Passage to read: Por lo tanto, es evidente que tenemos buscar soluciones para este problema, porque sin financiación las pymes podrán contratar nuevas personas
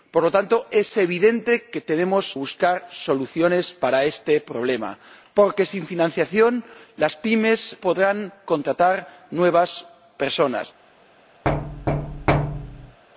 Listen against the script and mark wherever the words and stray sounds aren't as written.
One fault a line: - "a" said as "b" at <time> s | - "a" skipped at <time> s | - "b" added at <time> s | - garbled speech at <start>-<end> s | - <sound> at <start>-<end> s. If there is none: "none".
- thud at 11.4-13.0 s